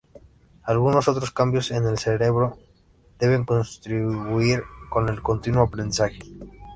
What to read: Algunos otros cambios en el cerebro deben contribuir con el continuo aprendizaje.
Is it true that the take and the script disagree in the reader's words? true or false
false